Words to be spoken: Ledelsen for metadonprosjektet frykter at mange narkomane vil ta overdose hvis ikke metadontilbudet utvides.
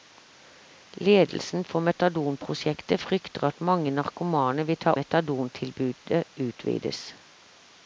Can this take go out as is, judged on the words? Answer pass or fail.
fail